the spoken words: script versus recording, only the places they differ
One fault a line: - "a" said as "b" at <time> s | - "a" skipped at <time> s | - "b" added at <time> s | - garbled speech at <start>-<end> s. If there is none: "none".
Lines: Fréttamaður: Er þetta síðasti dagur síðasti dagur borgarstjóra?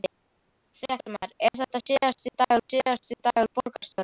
none